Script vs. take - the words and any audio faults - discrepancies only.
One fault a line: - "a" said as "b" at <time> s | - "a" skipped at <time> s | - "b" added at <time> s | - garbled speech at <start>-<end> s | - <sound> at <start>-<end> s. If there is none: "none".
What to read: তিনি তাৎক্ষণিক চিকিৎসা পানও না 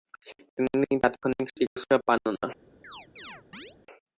- dropout at 1.7-1.8 s
- chirp at 2.8-3.8 s